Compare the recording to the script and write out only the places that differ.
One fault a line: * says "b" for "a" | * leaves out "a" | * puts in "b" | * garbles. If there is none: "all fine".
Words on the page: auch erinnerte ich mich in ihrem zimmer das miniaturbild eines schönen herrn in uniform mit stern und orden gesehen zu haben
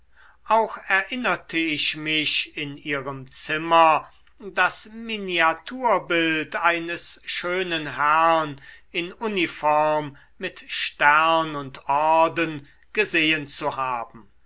all fine